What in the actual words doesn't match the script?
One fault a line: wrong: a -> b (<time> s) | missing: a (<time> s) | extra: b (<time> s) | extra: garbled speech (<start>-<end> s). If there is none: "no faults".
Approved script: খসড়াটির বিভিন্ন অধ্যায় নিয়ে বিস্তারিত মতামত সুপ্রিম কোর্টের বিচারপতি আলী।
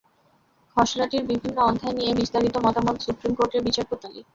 no faults